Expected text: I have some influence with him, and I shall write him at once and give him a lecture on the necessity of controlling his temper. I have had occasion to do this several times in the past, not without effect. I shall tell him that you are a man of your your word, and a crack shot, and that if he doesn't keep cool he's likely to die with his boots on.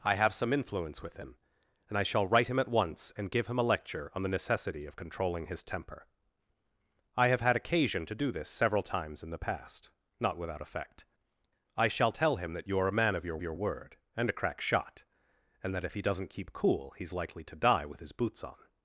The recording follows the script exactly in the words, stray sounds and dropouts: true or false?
true